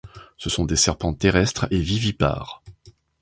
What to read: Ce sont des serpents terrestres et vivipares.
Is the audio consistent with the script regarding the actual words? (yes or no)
yes